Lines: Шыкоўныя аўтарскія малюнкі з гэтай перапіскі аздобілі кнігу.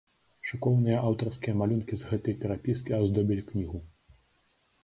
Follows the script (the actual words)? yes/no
yes